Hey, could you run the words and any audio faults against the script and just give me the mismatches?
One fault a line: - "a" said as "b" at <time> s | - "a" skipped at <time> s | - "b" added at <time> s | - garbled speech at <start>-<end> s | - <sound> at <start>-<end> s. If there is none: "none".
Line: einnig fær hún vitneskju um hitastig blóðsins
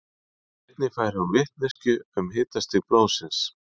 - dropout at 1.7-1.8 s